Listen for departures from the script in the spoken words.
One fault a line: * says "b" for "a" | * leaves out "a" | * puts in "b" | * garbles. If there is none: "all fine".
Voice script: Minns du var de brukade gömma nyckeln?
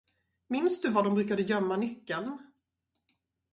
all fine